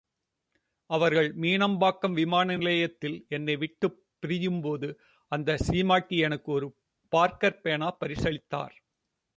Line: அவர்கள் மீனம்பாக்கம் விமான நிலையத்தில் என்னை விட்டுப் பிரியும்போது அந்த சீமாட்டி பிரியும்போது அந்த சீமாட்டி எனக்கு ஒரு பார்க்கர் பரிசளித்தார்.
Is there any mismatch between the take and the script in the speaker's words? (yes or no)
yes